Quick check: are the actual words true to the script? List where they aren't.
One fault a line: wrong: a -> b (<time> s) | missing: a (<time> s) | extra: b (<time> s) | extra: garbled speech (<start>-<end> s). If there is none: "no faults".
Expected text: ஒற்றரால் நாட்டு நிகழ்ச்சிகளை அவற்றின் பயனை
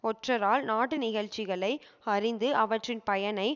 extra: அறிந்து (2.1 s)